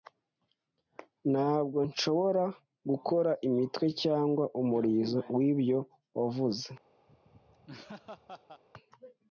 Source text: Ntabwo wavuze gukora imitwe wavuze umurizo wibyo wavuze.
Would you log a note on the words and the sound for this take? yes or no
yes